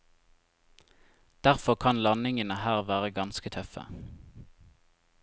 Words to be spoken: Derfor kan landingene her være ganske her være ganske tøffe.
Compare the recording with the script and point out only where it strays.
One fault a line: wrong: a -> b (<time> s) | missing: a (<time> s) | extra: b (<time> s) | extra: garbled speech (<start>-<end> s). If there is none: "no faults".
missing: her være ganske (3.5 s)